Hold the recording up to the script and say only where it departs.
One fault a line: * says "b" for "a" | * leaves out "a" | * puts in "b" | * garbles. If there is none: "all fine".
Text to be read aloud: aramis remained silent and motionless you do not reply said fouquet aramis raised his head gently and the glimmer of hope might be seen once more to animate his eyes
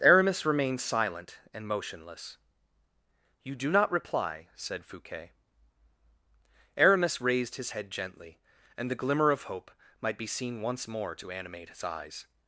all fine